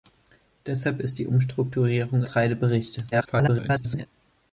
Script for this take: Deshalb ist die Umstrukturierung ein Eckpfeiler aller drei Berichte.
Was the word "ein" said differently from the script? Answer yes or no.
yes